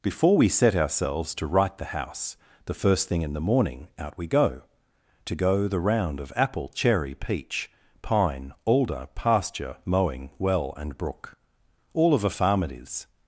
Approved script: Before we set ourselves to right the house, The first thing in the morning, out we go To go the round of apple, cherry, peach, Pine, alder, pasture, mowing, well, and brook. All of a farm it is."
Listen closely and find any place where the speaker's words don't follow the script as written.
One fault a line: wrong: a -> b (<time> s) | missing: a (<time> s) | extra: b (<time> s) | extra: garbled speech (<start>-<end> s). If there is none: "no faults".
no faults